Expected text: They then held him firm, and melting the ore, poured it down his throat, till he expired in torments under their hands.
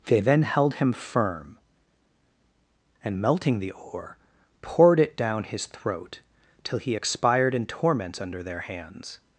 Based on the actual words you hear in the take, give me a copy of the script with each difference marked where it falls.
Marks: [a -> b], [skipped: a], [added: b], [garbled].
They then held him firm, and melting the ore, poured it down his throat, till he expired in torments under their hands.